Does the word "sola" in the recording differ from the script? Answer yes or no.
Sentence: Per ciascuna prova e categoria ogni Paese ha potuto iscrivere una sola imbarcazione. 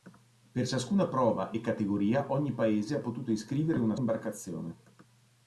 yes